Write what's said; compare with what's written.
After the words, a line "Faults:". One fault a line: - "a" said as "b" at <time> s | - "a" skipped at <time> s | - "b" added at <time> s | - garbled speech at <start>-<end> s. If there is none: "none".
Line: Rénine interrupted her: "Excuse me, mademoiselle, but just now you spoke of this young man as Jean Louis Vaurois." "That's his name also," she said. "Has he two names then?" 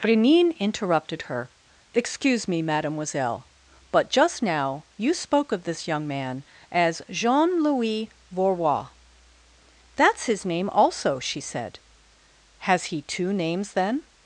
Rénine interrupted her: "Excuse me, mademoiselle, but just now you spoke of this young man as Jean Louis Vaurois." "That's his name also," she said. "Has he two names then?"
Faults:
none